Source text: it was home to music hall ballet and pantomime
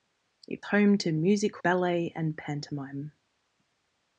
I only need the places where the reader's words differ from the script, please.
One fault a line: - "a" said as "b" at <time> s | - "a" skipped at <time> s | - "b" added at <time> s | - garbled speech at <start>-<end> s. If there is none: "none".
- "was" skipped at 0.6 s
- "hall" skipped at 1.6 s